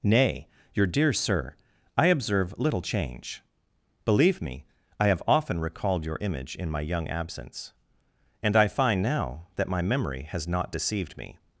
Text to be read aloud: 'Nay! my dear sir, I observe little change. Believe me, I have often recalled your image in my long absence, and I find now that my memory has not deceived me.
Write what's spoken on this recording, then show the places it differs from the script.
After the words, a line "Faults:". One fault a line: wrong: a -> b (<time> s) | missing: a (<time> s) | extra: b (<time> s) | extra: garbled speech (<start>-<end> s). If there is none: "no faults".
'Nay! your dear sir, I observe little change. Believe me, I have often recalled your image in my young absence, and I find now that my memory has not deceived me.
Faults:
wrong: my -> your (0.7 s)
wrong: long -> young (6.8 s)